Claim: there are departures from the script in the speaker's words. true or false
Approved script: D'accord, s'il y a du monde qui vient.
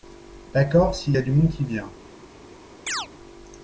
false